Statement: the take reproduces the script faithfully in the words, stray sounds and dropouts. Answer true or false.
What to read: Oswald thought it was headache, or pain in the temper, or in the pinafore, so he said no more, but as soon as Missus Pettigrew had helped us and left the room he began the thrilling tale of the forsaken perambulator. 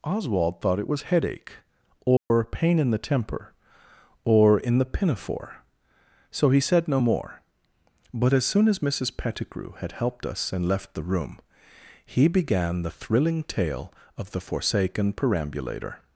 false